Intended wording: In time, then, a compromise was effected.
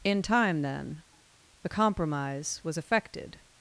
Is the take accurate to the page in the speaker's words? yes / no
no